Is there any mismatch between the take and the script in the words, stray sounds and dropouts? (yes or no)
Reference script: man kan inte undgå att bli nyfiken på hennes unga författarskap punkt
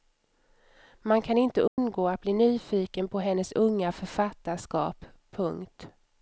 yes